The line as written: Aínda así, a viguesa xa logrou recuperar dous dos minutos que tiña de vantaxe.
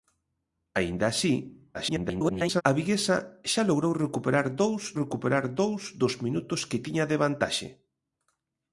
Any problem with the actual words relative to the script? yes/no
yes